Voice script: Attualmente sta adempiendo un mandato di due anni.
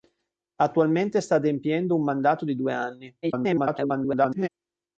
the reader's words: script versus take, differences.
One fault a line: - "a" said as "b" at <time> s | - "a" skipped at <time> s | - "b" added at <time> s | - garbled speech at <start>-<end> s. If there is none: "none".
- garbled speech at 3.2-4.5 s